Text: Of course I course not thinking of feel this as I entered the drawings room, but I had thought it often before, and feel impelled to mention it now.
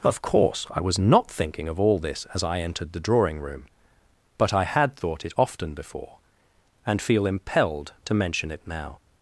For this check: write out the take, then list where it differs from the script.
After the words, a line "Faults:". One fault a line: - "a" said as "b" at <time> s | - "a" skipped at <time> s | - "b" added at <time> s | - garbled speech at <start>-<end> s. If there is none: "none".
Of course I was not thinking of all this as I entered the drawing room, but I had thought it often before, and feel impelled to mention it now.
Faults:
- "course" said as "was" at 0.8 s
- "feel" said as "all" at 1.8 s
- "drawings" said as "drawing" at 3.0 s